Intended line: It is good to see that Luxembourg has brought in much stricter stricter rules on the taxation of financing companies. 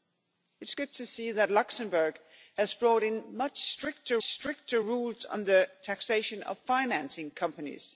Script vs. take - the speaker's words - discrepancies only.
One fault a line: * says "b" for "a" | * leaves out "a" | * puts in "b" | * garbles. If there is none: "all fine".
all fine